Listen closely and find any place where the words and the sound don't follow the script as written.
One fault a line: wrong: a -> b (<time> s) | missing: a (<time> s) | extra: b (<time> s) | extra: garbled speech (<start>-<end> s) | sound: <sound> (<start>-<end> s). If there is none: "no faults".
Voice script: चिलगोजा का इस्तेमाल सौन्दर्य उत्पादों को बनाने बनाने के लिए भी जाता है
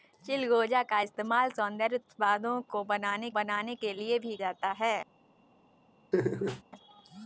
sound: laugh (6.1-6.6 s)